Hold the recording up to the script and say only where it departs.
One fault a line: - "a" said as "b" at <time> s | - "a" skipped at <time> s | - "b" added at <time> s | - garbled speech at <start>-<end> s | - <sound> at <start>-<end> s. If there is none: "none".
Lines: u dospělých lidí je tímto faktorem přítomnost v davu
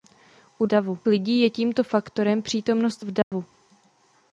- "dospělých" said as "davu" at 0.6 s
- dropout at 3.2-3.3 s